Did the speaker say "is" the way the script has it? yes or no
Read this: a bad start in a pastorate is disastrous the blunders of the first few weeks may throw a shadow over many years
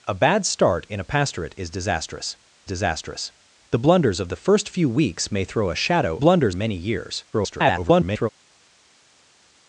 yes